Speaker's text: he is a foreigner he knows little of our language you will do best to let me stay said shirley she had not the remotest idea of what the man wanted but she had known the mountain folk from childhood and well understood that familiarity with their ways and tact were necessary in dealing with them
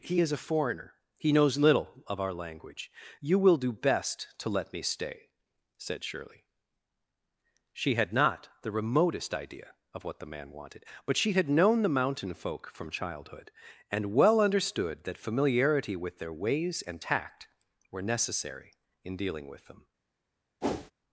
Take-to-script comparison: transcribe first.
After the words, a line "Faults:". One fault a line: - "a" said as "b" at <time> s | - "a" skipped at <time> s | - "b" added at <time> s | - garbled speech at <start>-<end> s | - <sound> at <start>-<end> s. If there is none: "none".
he is a foreigner he knows little of our language you will do best to let me stay said shirley she had not the remotest idea of what the man wanted but she had known the mountain folk from childhood and well understood that familiarity with their ways and tact were necessary in dealing with them
Faults:
- whoosh at 20.6-20.9 s